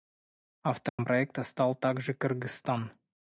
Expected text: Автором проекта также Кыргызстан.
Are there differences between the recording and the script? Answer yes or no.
yes